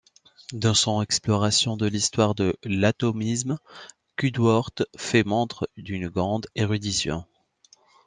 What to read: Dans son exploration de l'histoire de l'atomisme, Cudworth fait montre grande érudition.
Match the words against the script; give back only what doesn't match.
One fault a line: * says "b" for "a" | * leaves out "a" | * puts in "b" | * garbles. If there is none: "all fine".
* puts in "d'une"